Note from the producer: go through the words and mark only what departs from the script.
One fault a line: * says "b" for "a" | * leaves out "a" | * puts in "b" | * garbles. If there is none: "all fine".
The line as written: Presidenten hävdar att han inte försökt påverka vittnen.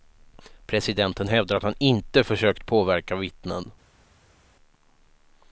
all fine